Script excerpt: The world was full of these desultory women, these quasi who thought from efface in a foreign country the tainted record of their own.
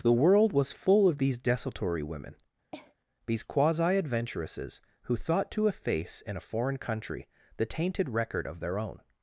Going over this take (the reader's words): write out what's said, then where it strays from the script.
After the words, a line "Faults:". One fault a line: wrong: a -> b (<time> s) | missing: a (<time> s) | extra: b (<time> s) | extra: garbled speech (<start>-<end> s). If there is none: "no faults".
The world was full of these desultory women, these quasi adventuresses who thought to efface in a foreign country the tainted record of their own.
Faults:
extra: adventuresses (4.0 s)
wrong: from -> to (5.5 s)